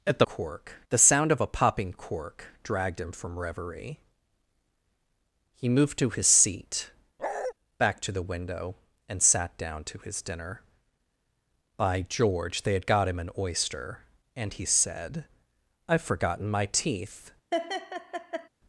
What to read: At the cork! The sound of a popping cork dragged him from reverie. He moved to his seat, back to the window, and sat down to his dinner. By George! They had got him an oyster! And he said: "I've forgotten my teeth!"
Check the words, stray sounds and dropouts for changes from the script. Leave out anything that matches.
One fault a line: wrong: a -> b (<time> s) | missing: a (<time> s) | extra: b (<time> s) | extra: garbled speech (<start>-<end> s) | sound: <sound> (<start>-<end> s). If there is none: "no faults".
sound: bark (7.2-7.5 s)
sound: laugh (17.5-18.5 s)